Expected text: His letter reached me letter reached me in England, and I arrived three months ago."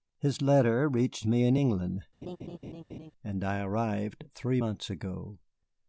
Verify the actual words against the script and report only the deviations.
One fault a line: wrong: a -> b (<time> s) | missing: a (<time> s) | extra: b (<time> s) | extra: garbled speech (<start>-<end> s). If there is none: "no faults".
missing: letter reached me (1.4 s)